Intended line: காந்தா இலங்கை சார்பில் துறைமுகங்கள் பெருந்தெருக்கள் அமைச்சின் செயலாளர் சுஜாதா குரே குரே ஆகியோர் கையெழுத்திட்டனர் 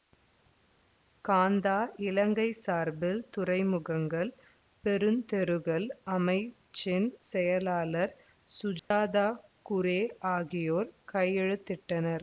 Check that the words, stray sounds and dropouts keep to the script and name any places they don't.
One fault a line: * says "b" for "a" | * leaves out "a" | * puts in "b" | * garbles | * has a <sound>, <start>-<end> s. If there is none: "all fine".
* has a dropout, 8.8-8.9 s
* leaves out "குரே"